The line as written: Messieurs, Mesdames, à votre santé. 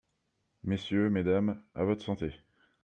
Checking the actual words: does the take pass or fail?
pass